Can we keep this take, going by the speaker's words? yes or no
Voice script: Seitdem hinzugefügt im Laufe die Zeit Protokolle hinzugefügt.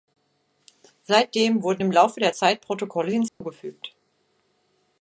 no